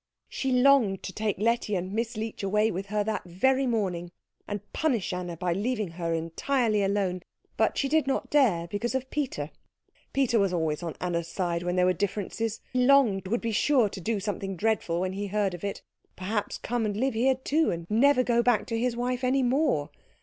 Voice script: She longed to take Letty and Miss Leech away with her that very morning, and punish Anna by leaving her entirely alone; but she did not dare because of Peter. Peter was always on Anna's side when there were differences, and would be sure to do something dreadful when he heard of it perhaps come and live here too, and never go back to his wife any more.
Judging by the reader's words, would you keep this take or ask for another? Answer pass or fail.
fail